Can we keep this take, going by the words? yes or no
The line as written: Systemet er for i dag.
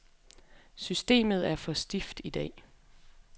no